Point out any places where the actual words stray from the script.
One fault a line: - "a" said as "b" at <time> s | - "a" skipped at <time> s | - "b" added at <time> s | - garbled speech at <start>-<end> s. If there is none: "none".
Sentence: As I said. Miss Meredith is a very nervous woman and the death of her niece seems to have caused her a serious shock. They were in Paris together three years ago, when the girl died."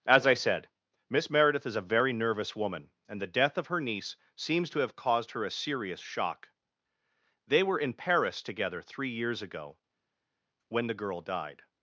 none